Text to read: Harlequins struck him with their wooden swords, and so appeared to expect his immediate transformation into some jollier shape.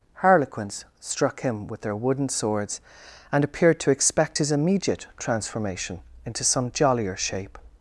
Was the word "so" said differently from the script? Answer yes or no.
yes